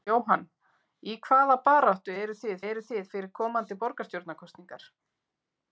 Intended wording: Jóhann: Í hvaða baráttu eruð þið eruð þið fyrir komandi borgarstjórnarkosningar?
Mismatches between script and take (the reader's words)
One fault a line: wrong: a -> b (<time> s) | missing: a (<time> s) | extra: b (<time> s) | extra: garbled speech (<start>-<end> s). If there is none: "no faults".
no faults